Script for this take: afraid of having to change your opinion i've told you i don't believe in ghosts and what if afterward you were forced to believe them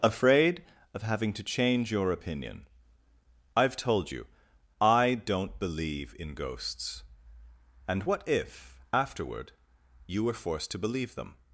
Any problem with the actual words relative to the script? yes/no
no